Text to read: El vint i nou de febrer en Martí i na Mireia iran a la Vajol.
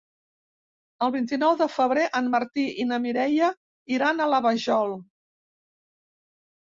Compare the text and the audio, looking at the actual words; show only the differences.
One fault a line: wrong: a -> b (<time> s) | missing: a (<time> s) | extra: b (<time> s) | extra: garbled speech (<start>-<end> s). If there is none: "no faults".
no faults